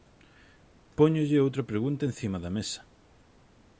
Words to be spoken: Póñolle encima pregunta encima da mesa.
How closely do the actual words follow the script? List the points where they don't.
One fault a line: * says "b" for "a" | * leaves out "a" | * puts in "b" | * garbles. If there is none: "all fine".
* says "outra" for "encima"